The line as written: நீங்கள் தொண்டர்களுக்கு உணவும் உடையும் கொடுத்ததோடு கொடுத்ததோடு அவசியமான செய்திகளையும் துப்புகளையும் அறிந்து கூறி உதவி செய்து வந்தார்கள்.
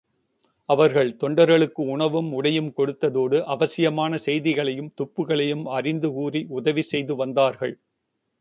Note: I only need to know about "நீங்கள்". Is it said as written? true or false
false